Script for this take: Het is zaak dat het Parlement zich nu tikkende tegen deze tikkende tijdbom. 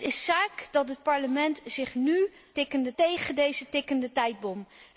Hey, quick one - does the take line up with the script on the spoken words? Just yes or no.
yes